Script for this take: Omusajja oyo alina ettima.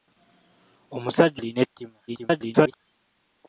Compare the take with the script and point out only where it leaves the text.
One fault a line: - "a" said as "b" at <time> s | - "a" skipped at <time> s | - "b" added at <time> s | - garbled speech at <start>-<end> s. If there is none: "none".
- "oyo" skipped at 1.4 s
- garbled speech at 2.1-2.8 s